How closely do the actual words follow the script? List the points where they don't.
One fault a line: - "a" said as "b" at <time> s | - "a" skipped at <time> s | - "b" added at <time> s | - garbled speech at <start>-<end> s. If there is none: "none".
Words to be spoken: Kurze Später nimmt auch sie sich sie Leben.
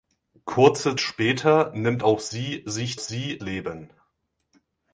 none